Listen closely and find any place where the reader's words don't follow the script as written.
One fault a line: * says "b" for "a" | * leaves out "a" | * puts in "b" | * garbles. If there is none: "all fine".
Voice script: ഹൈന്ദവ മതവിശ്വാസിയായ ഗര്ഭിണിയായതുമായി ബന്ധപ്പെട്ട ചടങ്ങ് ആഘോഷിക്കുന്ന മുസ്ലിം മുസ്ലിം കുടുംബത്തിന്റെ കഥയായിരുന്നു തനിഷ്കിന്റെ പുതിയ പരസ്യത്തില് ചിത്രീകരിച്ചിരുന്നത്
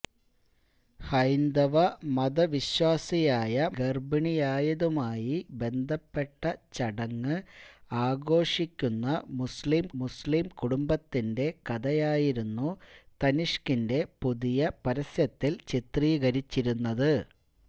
all fine